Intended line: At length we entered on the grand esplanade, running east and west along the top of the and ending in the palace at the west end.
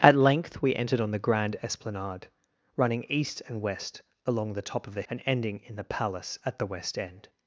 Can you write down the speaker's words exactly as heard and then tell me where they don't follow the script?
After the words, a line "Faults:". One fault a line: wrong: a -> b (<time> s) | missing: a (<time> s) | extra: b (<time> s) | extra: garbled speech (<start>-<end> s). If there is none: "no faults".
At length we entered on the grand esplanade, running east and west along the top of the and ending in the palace at the west end.
Faults:
no faults